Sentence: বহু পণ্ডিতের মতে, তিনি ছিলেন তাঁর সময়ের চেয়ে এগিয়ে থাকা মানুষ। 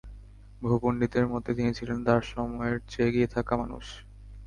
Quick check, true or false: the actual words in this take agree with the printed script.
true